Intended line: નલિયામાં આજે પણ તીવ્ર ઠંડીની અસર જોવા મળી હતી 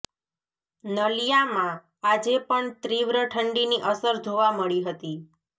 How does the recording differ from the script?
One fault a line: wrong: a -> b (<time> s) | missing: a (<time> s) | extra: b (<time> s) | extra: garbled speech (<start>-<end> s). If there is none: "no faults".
no faults